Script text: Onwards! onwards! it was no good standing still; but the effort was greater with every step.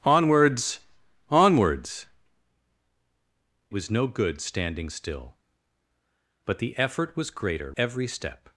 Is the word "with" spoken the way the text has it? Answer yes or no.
no